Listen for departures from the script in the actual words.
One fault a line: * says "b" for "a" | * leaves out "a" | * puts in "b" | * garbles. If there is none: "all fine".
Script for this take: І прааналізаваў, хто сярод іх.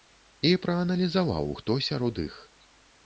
all fine